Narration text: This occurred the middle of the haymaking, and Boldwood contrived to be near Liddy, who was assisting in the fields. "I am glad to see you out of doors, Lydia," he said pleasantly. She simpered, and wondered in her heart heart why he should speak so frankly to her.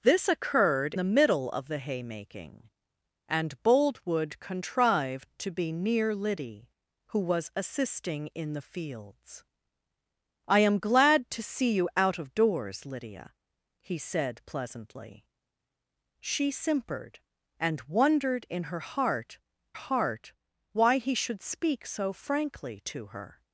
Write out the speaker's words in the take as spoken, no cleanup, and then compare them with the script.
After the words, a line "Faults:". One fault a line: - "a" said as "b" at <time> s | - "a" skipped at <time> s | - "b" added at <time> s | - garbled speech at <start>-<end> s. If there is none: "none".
This occurred the middle of the haymaking, and Boldwood contrived to be near Liddy, who was assisting in the fields. "I am glad to see you out of doors, Lydia," he said pleasantly. She simpered, and wondered in her heart heart why he should speak so frankly to her.
Faults:
none